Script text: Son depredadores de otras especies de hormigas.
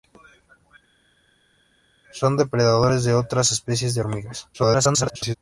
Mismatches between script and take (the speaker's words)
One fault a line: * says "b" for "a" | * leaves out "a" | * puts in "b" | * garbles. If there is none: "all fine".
* garbles